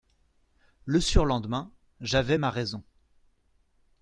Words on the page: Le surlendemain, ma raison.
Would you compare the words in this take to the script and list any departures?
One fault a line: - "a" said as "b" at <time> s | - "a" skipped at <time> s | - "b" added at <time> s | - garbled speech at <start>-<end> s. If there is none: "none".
- "j'avais" added at 2.0 s